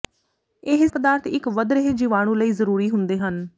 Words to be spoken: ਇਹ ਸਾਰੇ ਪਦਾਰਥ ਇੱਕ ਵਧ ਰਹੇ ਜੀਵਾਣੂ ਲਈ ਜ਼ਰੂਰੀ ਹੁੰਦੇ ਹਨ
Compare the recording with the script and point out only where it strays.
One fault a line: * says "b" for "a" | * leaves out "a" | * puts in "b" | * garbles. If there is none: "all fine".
* leaves out "ਸਾਰੇ"